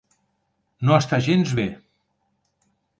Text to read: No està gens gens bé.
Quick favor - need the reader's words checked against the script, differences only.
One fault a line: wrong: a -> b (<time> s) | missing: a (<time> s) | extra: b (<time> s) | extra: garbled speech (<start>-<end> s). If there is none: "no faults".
missing: gens (1.6 s)